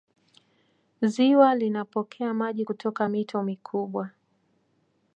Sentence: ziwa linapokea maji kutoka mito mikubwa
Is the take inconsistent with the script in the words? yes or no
no